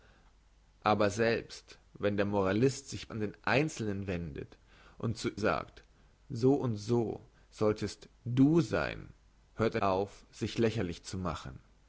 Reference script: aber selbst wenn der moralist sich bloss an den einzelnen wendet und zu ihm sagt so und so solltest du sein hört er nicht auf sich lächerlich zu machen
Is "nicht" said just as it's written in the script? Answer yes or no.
no